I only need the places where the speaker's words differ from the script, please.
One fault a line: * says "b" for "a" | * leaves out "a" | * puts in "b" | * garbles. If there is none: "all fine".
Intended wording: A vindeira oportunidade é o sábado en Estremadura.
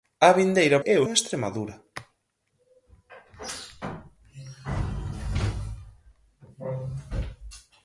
* leaves out "oportunidade"
* leaves out "sábado"